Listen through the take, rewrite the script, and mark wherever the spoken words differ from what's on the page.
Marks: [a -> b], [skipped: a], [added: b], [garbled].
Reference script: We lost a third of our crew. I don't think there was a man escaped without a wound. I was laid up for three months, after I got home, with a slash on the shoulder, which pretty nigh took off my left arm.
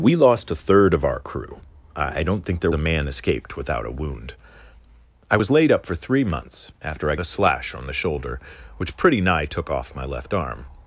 We lost a third of our crew. I don't think there [skipped: was] a man escaped without a wound. I was laid up for three months, after I [skipped: got home, with] a slash on the shoulder, which pretty nigh took off my left arm.